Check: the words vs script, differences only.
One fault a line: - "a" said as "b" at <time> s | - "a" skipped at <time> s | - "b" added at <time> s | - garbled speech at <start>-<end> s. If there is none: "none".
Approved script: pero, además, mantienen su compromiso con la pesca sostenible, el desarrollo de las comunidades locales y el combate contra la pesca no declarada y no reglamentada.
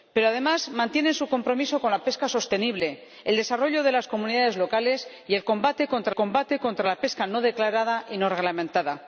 - "combate contra" added at 6.1 s